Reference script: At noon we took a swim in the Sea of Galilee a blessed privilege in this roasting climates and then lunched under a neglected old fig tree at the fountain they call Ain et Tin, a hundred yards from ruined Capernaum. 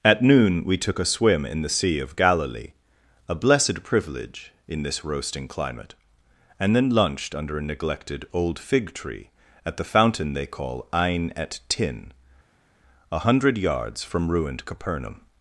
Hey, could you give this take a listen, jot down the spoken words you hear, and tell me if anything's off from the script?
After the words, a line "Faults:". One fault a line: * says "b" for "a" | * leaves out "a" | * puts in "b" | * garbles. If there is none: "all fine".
At noon we took a swim in the Sea of Galilee a blessed privilege in this roasting climate and then lunched under a neglected old fig tree at the fountain they call Ain et Tin, a hundred yards from ruined Capernaum.
Faults:
* says "climate" for "climates"